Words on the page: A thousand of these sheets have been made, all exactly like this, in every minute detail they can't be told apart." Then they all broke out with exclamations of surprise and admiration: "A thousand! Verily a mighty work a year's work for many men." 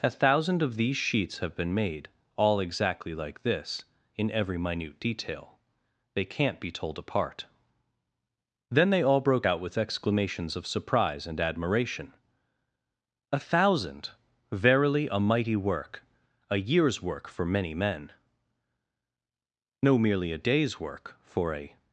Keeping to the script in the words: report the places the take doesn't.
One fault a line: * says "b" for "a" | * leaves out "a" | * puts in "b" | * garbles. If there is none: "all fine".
* puts in "No merely a day's work for a"